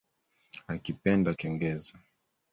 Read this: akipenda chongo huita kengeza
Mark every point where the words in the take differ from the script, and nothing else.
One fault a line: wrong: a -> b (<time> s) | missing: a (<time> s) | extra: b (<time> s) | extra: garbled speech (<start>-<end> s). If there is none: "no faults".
missing: chongo huita (1.3 s)